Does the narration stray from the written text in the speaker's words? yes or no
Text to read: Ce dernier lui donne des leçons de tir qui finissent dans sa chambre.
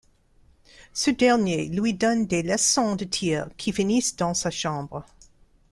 no